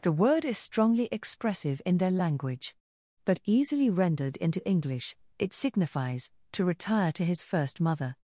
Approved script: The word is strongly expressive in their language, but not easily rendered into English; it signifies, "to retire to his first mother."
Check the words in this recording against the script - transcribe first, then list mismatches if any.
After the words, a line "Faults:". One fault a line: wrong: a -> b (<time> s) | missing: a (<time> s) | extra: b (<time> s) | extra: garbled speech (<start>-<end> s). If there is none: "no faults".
The word is strongly expressive in their language, but easily rendered into English; it signifies, "to retire to his first mother."
Faults:
missing: not (3.4 s)